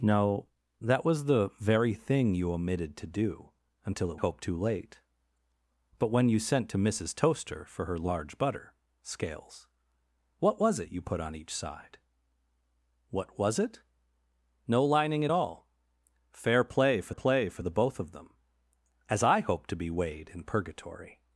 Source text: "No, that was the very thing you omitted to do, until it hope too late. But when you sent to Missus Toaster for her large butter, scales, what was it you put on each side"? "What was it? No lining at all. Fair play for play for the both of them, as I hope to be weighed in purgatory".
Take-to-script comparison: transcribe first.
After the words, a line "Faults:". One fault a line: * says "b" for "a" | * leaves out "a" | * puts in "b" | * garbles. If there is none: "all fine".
"No, that was the very thing you omitted to do, until it hope too late. But when you sent to Missus Toaster for her large butter, scales, what was it you put on each side"? "What was it? No lining at all. Fair play for play for the both of them, as I hope to be weighed in purgatory".
Faults:
all fine